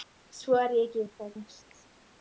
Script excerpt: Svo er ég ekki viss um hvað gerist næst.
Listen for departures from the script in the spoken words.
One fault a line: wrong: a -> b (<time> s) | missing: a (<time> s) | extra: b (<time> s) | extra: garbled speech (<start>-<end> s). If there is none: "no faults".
missing: viss (1.1 s)
missing: gerist (1.3 s)